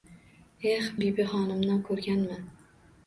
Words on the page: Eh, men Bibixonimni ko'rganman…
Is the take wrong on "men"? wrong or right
wrong